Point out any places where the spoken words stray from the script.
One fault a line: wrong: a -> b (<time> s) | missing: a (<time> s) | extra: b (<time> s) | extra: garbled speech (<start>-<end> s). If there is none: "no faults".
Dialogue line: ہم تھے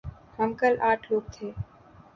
extra: کل آٹھ لوگ (0.6 s)